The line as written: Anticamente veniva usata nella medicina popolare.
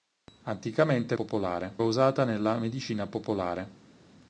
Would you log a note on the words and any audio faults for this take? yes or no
yes